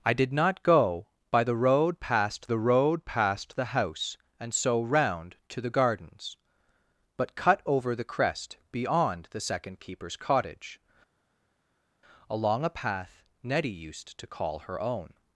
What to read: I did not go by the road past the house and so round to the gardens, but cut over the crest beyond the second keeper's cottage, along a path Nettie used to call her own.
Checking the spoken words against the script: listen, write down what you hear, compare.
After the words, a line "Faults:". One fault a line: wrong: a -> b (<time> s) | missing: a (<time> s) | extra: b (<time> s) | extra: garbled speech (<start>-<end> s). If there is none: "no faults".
I did not go by the road past the road past the house and so round to the gardens, but cut over the crest beyond the second keeper's cottage, along a path Nettie used to call her own.
Faults:
extra: road past the (2.6 s)